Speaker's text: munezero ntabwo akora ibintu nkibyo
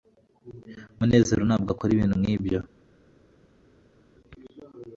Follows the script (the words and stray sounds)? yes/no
yes